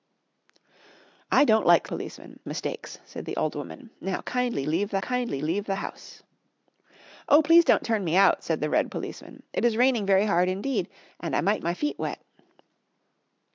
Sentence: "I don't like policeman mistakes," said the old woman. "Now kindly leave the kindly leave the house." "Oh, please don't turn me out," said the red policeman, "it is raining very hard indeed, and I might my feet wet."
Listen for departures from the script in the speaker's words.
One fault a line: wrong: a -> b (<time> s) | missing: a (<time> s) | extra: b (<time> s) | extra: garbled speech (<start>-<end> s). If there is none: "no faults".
no faults